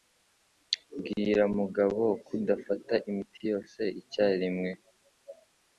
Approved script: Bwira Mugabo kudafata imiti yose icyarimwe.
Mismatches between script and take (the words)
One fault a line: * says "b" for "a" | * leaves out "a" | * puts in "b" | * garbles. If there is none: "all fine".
all fine